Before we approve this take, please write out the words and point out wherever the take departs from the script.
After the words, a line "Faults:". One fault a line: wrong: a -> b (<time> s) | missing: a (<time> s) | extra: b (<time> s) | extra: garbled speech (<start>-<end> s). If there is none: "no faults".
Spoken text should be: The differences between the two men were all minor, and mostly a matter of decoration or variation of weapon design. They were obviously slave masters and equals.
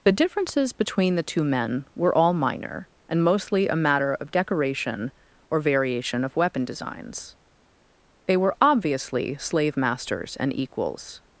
The differences between the two men were all minor, and mostly a matter of decoration or variation of weapon designs. They were obviously slave masters and equals.
Faults:
wrong: design -> designs (6.7 s)